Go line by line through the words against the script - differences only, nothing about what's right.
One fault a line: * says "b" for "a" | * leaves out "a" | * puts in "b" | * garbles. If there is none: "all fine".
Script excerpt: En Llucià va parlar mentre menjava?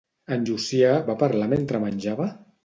all fine